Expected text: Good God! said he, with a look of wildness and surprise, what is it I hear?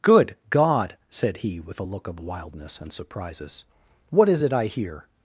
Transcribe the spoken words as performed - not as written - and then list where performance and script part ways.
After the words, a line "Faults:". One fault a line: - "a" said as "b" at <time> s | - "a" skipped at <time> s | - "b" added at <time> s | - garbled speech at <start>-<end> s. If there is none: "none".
Good God! said he, with a look of wildness and surprises, what is it I hear?
Faults:
- "surprise" said as "surprises" at 2.9 s